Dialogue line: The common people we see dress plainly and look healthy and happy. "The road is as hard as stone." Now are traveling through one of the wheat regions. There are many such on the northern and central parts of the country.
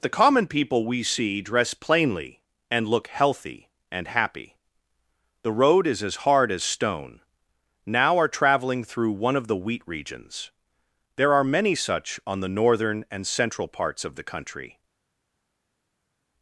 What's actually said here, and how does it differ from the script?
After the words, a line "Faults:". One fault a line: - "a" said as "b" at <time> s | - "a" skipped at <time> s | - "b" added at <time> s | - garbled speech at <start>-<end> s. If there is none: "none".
The common people we see dress plainly and look healthy and happy. "The road is as hard as stone." Now are traveling through one of the wheat regions. There are many such on the northern and central parts of the country.
Faults:
none